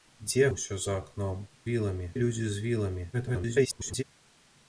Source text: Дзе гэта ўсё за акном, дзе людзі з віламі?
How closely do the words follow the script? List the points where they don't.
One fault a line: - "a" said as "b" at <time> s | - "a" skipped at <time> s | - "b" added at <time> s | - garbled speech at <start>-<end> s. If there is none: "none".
- "гэта" skipped at 0.5 s
- "дзе" said as "віламі" at 1.7 s
- garbled speech at 3.1-4.0 s